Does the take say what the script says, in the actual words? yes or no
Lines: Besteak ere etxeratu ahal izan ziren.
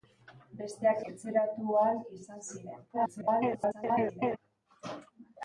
no